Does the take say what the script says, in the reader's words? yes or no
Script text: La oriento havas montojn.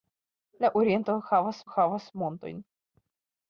no